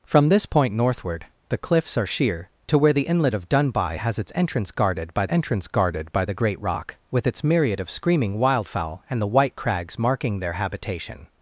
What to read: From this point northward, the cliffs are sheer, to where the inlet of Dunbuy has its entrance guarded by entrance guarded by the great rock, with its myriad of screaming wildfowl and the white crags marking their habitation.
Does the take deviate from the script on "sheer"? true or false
false